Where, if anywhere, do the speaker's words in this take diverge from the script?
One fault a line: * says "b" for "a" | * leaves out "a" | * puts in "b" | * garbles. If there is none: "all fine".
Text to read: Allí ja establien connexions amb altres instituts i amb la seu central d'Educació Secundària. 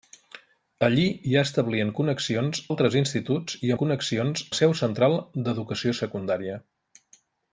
* leaves out "amb"
* says "connexions" for "amb"